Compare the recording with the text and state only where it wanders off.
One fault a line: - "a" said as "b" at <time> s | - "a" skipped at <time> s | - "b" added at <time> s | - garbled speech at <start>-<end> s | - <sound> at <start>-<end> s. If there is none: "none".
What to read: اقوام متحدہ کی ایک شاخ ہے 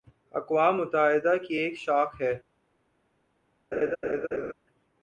- laugh at 3.7-4.5 s